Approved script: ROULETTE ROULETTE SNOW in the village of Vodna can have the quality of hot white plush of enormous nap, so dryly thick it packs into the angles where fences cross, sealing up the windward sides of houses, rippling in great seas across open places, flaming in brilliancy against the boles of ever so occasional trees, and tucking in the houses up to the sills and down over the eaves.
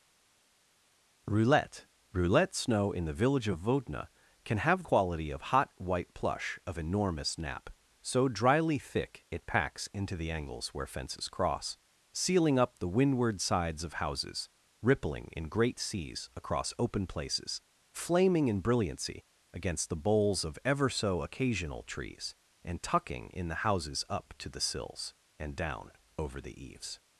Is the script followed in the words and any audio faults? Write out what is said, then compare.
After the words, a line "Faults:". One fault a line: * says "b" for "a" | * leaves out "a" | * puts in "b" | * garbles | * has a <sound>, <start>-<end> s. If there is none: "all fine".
ROULETTE ROULETTE SNOW in the village of Vodna can have quality of hot white plush of enormous nap, so dryly thick it packs into the angles where fences cross, sealing up the windward sides of houses, rippling in great seas across open places, flaming in brilliancy against the boles of ever so occasional trees, and tucking in the houses up to the sills and down over the eaves.
Faults:
* leaves out "the"